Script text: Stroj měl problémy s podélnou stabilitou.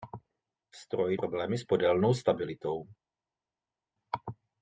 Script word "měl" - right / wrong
wrong